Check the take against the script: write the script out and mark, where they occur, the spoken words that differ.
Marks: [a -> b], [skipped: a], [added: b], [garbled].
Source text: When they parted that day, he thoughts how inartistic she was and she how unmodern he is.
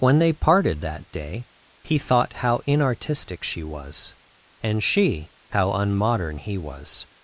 When they parted that day, he [thoughts -> thought] how inartistic she was and she how unmodern he [is. -> was]